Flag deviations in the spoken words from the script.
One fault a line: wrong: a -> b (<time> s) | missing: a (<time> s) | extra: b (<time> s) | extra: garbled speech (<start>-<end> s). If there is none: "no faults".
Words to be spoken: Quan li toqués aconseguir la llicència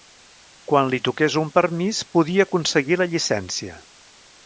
extra: un permís podia (1.4 s)